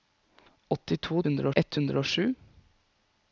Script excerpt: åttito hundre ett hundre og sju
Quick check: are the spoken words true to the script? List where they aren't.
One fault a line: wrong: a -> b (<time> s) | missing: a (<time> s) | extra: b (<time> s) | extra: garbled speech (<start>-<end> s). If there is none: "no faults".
no faults